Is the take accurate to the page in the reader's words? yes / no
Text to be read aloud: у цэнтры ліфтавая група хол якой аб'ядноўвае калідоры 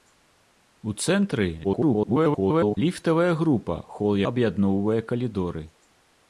no